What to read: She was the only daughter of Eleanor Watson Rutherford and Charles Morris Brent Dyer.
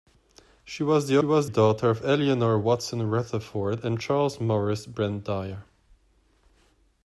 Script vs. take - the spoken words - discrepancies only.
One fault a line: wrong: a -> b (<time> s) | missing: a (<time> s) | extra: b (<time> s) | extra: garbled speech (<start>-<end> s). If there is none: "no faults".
wrong: only -> was (1.2 s)